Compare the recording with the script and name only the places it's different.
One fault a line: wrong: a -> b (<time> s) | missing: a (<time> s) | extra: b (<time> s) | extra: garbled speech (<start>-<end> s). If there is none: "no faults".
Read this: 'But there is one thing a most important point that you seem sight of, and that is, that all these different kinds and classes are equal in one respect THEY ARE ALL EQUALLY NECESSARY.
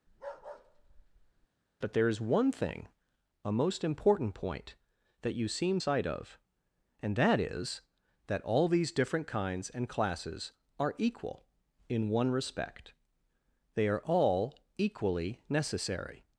no faults